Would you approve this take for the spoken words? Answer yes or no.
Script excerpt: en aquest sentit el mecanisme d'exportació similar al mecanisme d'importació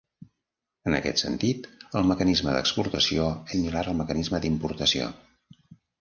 yes